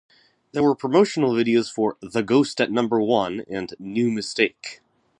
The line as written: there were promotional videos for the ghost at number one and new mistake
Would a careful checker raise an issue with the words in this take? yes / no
no